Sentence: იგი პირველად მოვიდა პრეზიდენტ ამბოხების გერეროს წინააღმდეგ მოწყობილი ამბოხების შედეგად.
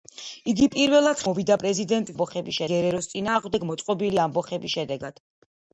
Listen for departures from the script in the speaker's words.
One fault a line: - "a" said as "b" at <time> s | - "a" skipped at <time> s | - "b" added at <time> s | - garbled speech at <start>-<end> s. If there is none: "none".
none